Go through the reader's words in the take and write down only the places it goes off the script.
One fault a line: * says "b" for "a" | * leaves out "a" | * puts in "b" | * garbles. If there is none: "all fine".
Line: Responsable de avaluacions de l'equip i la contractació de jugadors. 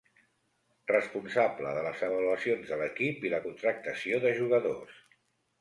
* puts in "les"